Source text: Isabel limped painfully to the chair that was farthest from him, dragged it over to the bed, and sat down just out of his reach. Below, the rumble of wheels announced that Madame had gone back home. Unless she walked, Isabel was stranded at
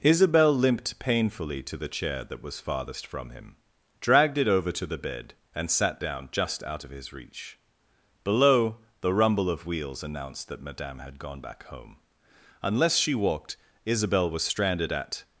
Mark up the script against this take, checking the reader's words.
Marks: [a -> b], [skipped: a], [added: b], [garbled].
Isabel limped painfully to the chair that was farthest from him, dragged it over to the bed, and sat down just out of his reach. Below, the rumble of wheels announced that Madame had gone back home. Unless she walked, Isabel was stranded at